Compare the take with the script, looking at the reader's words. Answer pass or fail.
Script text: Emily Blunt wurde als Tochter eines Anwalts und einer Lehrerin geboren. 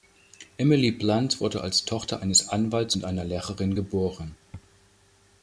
pass